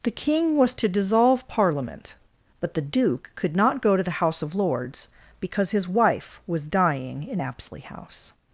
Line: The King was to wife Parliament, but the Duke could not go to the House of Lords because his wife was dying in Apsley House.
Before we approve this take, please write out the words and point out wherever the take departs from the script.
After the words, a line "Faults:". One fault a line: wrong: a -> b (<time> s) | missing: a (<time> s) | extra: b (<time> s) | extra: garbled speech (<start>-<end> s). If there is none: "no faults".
The King was to dissolve Parliament, but the Duke could not go to the House of Lords because his wife was dying in Apsley House.
Faults:
wrong: wife -> dissolve (0.9 s)